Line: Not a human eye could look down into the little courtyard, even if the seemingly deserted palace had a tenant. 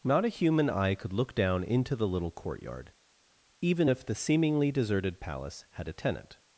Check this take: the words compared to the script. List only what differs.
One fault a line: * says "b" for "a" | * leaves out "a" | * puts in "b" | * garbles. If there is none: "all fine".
all fine